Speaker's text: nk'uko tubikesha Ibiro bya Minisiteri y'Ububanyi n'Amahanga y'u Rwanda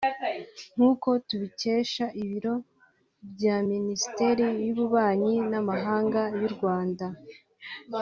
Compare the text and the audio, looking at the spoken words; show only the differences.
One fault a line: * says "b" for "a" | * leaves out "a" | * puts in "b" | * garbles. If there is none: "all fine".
all fine